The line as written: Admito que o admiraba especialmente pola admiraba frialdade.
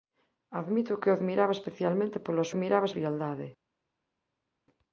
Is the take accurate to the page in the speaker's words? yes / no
yes